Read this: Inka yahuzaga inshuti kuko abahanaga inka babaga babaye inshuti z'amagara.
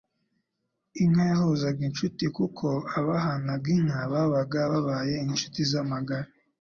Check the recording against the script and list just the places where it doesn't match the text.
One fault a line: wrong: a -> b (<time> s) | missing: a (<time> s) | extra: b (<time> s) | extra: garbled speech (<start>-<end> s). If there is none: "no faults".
no faults